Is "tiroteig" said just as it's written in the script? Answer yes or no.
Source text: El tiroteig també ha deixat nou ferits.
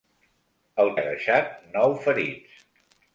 no